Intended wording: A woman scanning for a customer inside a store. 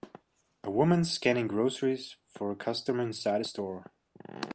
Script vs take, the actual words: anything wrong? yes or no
yes